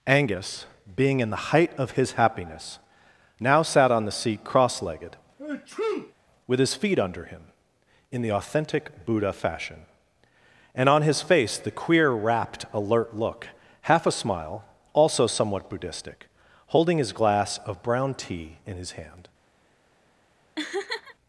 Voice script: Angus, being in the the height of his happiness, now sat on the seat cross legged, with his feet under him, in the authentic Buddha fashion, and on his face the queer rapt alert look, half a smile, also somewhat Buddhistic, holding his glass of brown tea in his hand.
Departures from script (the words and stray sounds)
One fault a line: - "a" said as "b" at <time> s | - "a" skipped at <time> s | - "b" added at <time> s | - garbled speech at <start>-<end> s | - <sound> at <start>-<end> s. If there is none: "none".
- "the" skipped at 1.5 s
- sneeze at 5.4-6.1 s
- laugh at 20.6-21.1 s